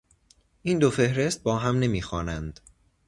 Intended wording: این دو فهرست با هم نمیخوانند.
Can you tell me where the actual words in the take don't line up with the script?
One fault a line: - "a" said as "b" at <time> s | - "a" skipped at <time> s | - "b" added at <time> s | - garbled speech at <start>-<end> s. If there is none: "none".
none